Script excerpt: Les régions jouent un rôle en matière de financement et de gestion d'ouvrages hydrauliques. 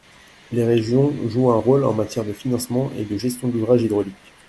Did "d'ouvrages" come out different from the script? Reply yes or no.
no